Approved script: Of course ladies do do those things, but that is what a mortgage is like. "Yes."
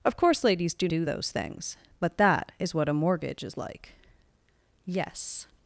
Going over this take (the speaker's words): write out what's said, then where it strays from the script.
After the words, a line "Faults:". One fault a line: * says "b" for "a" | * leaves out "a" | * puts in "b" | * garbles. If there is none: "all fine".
Of course ladies do do those things, but that is what a mortgage is like. "Yes."
Faults:
all fine